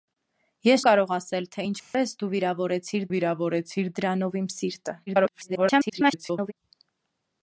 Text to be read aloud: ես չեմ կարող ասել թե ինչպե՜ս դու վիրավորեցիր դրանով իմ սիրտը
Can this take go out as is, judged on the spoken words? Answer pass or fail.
fail